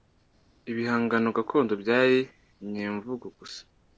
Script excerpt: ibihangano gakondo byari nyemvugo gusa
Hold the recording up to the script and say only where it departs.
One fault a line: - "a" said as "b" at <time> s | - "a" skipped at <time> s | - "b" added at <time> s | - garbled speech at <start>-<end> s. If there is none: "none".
none